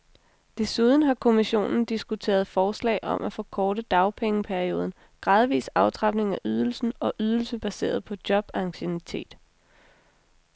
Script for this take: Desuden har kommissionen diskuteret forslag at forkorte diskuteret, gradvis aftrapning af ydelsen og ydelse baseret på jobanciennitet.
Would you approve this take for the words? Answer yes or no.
no